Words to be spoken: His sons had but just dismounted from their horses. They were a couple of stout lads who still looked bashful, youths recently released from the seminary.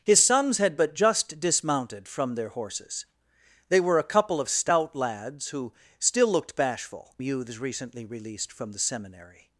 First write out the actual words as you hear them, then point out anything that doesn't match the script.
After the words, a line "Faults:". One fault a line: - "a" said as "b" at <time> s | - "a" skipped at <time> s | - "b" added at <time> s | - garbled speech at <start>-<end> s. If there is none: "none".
His sons had but just dismounted from their horses. They were a couple of stout lads who still looked bashful, youths recently released from the seminary.
Faults:
none